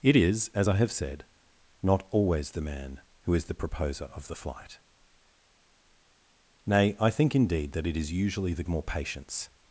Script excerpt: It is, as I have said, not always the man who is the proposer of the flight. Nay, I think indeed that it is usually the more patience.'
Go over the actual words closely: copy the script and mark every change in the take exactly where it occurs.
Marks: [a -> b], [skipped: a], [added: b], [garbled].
It is, as I have said, not always the man who is the proposer of the flight. Nay, I think indeed that it is usually the more patience.'